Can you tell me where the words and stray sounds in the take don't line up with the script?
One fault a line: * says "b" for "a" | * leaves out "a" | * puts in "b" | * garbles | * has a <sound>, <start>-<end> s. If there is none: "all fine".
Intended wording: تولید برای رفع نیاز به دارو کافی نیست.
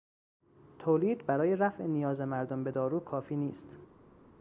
* puts in "مردم"